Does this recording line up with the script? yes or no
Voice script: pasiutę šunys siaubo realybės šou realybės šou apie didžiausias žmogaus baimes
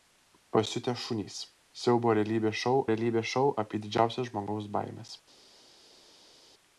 yes